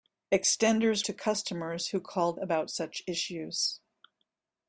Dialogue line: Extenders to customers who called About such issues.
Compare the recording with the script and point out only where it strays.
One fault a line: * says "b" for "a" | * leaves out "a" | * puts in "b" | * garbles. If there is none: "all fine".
all fine